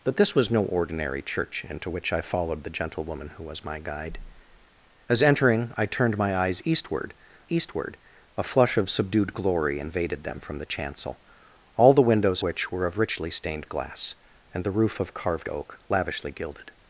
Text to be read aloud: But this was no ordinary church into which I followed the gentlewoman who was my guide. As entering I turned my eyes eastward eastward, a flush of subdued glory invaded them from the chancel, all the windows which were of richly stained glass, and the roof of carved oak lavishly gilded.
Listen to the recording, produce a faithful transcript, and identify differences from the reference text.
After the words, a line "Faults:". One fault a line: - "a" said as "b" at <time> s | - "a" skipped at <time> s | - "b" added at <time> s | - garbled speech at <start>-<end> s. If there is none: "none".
But this was no ordinary church into which I followed the gentlewoman who was my guide. As entering I turned my eyes eastward eastward, a flush of subdued glory invaded them from the chancel, all the windows which were of richly stained glass, and the roof of carved oak lavishly gilded.
Faults:
none